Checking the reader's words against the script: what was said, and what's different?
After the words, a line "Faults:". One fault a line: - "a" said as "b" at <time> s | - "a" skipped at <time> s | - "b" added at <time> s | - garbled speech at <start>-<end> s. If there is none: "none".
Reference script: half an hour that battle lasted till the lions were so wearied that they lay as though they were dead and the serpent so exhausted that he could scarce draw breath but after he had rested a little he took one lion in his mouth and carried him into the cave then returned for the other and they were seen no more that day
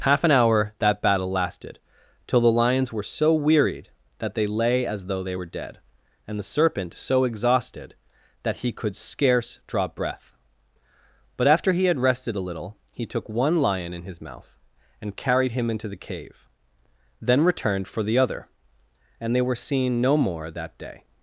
half an hour that battle lasted till the lions were so wearied that they lay as though they were dead and the serpent so exhausted that he could scarce draw breath but after he had rested a little he took one lion in his mouth and carried him into the cave then returned for the other and they were seen no more that day
Faults:
none